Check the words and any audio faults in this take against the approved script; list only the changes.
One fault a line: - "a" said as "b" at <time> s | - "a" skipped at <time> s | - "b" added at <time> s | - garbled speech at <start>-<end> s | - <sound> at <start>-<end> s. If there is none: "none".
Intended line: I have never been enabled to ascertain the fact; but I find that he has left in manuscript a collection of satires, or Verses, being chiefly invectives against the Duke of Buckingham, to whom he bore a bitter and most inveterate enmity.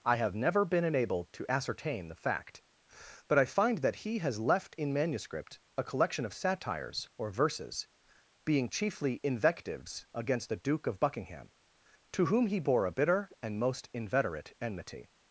none